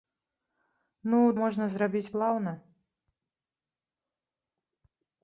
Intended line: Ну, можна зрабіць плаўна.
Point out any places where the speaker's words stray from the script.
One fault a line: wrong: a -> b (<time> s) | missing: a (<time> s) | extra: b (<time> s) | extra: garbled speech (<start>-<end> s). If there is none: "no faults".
no faults